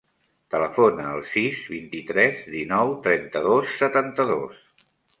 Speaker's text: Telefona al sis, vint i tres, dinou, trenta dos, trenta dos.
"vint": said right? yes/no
yes